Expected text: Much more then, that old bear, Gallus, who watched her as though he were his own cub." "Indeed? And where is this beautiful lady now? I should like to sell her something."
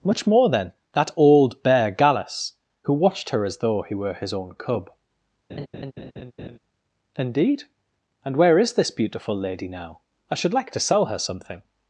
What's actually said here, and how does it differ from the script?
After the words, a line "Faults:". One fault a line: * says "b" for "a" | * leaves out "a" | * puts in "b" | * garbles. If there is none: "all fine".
Much more then, that old bear, Gallus, who watched her as though he were his own cub." "Indeed? And where is this beautiful lady now? I should like to sell her something."
Faults:
all fine